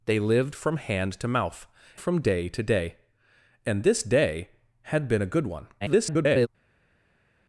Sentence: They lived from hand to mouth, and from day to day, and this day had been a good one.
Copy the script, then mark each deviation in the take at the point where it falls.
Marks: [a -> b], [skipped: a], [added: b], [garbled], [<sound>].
They lived from hand to mouth, [skipped: and] from day to day, and this day had been a good one. [garbled]